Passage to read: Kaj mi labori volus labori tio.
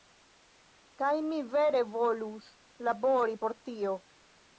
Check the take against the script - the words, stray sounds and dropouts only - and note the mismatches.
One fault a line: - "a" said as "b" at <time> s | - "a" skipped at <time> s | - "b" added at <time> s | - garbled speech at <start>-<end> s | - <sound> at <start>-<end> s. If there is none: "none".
- "labori" said as "vere" at 1.5 s
- "por" added at 3.4 s